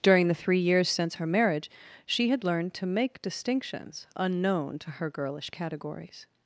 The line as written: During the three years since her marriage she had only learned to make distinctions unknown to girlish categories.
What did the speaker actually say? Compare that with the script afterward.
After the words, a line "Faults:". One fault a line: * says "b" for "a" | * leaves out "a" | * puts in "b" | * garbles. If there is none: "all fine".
During the three years since her marriage she had learned to make distinctions unknown to her girlish categories.
Faults:
* leaves out "only"
* puts in "her"